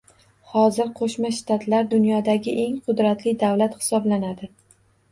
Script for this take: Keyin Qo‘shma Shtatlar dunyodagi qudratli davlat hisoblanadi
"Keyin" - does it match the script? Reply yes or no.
no